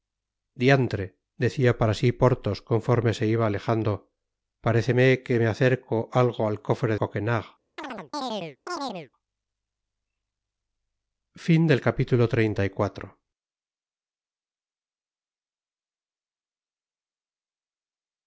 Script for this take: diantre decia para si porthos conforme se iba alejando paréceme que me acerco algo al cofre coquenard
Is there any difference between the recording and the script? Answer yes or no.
no